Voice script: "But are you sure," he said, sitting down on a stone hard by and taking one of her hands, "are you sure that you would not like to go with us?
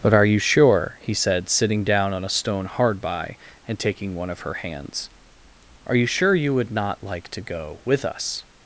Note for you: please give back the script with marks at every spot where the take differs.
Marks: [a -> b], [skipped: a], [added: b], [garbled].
"But are you sure," he said, sitting down on a stone hard by and taking one of her hands, "are you sure [skipped: that] you would not like to go with us?